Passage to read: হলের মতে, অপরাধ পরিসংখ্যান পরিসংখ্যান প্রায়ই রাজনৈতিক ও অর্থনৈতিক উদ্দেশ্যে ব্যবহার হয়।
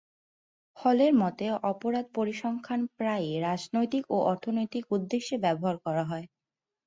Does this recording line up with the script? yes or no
no